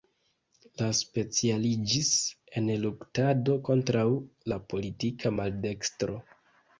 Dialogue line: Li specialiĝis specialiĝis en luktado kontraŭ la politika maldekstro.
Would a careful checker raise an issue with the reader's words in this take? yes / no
yes